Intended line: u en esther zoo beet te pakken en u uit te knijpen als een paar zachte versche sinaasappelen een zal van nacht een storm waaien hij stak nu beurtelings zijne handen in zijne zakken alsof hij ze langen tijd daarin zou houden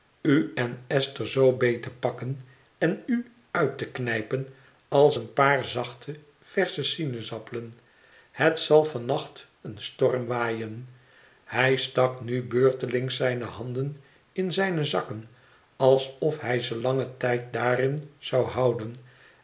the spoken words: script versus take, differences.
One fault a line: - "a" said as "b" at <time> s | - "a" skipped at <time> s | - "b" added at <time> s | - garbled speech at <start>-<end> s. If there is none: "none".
- "een" said as "het" at 8.3 s